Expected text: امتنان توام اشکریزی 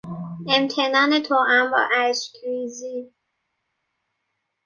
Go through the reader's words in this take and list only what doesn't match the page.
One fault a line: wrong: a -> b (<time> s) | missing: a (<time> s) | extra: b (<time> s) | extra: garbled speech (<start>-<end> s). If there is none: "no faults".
extra: با (1.7 s)